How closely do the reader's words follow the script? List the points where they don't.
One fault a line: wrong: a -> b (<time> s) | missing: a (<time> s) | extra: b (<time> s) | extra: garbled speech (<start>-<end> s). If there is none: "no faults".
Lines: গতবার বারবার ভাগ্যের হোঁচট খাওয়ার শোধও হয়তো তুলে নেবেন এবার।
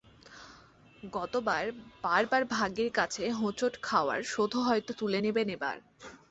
extra: কাছে (2.9 s)